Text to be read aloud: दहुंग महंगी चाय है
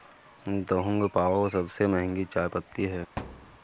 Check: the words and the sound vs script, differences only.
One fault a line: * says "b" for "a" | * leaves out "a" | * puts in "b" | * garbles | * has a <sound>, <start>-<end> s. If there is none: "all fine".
* puts in "पाओ सबसे"
* puts in "पत्ती"
* has a thud, 3.2-3.6 s